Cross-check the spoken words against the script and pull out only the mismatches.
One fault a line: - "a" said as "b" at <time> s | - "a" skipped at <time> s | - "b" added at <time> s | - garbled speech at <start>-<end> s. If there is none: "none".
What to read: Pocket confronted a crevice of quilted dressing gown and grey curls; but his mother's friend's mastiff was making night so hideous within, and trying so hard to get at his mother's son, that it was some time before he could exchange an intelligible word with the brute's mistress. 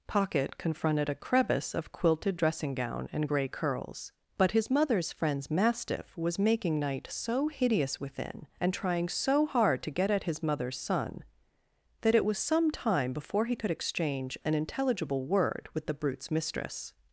none